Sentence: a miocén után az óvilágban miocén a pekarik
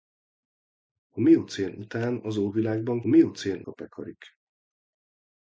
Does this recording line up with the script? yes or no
yes